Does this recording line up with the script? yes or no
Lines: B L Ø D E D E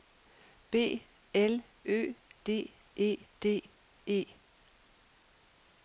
yes